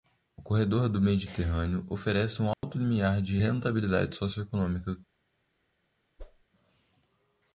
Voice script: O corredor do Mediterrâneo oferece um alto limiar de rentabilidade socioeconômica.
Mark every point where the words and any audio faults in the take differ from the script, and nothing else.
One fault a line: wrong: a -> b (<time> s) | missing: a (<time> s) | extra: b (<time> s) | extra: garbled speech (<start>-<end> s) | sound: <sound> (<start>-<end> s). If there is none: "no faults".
sound: dropout (2.5-2.6 s)
sound: whoosh (6.2-6.4 s)